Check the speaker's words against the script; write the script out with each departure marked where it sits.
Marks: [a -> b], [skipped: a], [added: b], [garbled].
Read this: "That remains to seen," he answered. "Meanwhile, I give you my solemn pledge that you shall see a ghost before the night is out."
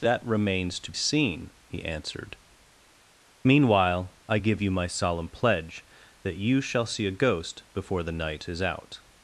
"That remains to seen," he answered. "Meanwhile, I give you my solemn pledge that you shall see a ghost before the night is out."